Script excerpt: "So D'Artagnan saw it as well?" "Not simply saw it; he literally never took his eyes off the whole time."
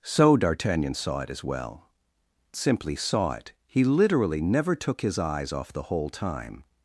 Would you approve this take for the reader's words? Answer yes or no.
no